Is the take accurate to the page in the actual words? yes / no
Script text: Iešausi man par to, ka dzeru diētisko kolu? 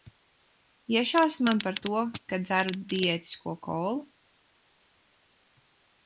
yes